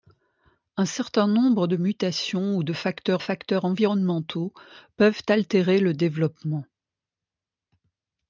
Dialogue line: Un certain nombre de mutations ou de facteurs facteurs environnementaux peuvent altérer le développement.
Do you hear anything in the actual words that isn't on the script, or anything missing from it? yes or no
no